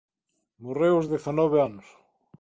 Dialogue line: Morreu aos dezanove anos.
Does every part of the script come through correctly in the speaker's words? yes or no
yes